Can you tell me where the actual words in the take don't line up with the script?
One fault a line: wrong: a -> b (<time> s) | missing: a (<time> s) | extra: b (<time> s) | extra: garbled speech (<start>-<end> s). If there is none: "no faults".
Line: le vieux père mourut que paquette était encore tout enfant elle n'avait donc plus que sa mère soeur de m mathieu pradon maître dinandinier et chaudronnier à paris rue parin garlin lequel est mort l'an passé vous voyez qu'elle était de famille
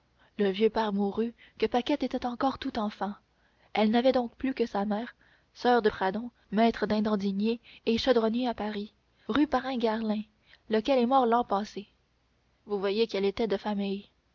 missing: m mathieu (5.9 s)